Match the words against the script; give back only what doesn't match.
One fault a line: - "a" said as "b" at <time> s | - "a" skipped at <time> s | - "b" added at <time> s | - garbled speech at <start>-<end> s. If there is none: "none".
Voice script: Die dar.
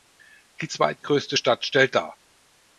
- "zweitgrößte Stadt stellt" added at 0.7 s